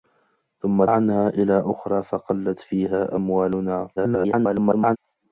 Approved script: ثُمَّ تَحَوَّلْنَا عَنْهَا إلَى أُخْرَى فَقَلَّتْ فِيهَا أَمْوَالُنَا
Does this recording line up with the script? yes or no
no